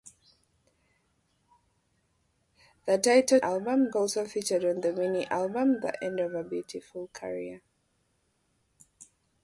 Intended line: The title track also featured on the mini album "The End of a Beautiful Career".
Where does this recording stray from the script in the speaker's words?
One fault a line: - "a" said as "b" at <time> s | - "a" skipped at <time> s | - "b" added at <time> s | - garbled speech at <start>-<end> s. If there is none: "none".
- "track" said as "album" at 3.4 s